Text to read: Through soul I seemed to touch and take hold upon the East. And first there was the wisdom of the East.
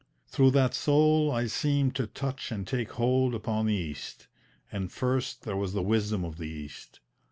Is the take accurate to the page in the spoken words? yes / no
no